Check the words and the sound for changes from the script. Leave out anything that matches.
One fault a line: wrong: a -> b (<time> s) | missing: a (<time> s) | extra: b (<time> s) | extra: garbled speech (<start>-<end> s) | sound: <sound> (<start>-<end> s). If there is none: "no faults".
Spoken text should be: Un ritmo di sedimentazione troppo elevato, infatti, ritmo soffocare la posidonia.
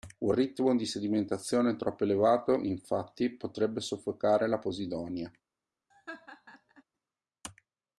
wrong: ritmo -> potrebbe (3.3 s)
sound: laugh (5.9-6.8 s)